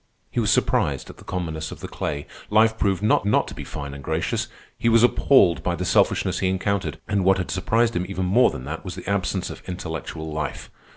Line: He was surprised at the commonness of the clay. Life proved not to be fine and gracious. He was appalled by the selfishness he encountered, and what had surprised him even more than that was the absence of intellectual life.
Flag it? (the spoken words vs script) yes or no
yes